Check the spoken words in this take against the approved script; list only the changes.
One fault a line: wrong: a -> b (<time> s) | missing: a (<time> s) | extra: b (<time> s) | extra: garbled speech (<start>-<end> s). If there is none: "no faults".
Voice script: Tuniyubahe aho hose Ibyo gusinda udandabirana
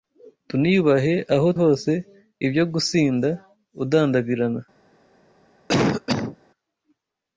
no faults